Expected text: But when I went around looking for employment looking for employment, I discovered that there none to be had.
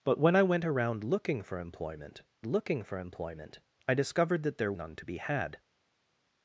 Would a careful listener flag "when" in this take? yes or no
no